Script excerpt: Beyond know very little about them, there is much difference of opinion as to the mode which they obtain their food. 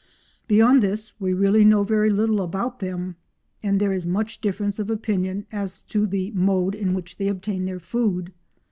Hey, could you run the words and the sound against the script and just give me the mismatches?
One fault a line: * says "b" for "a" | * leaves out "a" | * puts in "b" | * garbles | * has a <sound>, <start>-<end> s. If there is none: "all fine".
* puts in "this we really"
* puts in "and"
* puts in "in"